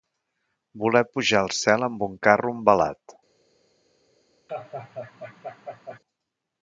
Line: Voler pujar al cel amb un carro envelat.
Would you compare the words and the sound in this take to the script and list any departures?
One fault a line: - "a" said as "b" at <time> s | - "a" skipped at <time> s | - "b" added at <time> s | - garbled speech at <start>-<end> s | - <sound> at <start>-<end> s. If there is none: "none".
- laugh at 4.5-6.0 s